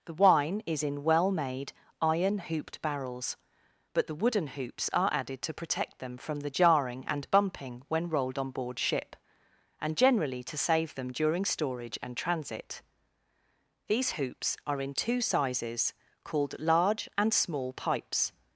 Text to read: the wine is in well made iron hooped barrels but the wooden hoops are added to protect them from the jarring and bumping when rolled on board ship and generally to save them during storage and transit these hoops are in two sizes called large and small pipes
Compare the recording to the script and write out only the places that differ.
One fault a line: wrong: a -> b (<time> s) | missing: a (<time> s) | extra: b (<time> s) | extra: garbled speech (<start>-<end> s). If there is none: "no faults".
no faults